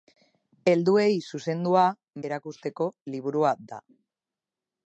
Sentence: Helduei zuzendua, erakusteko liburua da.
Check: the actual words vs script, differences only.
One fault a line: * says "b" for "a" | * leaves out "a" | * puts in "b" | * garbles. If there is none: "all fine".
all fine